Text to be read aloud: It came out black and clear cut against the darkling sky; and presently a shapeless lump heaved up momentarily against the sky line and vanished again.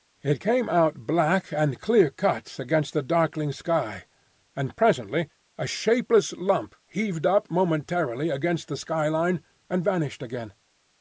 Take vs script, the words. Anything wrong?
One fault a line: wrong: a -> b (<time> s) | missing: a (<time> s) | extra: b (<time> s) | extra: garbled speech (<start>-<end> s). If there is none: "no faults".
no faults